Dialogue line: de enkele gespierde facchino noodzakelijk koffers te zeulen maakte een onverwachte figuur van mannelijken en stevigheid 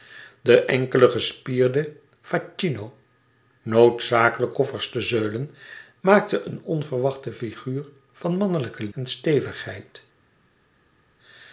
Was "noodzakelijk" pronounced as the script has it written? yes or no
yes